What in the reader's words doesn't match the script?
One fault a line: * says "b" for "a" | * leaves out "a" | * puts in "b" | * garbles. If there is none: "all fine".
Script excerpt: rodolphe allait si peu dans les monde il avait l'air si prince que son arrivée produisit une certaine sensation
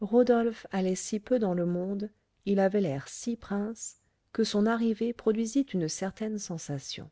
* says "le" for "les"